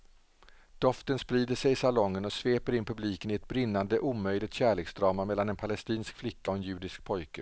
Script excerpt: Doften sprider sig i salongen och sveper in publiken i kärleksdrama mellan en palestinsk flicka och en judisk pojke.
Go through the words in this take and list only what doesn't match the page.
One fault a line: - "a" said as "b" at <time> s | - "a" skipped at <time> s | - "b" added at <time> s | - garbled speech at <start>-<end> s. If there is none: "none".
- "ett brinnande omöjligt" added at 3.3 s